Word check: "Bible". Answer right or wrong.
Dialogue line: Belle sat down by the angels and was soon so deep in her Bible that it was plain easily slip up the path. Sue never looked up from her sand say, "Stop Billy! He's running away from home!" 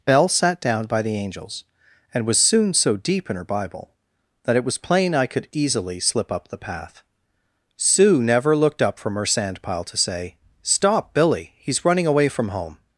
right